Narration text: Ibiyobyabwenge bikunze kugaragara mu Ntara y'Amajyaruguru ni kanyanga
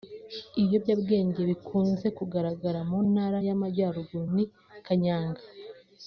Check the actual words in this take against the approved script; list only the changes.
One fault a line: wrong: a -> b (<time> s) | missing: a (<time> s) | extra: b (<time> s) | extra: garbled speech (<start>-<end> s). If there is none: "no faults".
no faults